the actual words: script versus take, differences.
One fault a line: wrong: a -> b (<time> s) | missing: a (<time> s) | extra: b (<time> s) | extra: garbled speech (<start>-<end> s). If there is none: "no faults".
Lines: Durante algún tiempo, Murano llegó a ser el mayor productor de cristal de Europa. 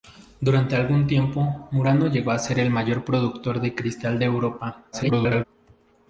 extra: garbled speech (4.9-5.4 s)